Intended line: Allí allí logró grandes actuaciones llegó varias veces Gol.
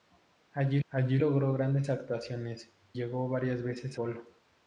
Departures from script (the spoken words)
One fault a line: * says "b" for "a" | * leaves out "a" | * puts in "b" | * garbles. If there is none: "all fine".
all fine